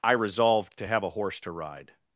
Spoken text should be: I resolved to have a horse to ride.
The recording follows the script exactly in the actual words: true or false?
true